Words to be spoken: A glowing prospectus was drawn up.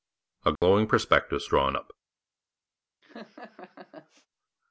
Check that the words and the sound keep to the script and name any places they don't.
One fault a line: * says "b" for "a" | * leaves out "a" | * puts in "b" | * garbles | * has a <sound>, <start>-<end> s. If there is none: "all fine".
* has a dropout, 0.6-0.6 s
* leaves out "was"
* has a laugh, 3.0-4.3 s